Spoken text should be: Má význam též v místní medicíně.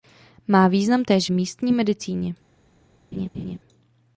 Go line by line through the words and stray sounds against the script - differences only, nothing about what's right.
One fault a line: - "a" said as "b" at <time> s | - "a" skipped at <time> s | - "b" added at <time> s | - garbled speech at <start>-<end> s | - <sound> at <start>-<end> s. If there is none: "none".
- "v" skipped at 1.3 s
- laugh at 3.1-3.6 s